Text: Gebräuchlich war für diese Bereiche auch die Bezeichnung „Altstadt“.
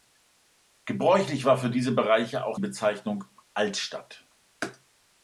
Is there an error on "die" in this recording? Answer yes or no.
yes